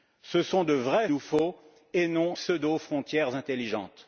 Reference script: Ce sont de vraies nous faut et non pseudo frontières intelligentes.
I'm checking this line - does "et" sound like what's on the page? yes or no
yes